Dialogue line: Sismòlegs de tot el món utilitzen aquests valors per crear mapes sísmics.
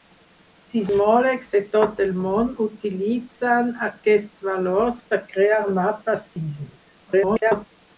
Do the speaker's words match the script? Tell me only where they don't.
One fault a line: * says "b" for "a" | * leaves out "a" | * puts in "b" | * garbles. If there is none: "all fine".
* garbles